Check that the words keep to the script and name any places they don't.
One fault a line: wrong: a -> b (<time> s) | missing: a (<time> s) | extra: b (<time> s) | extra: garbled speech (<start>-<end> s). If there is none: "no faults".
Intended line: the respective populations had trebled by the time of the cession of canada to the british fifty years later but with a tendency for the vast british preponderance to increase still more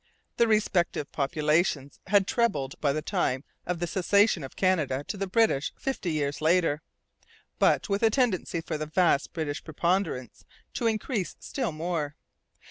no faults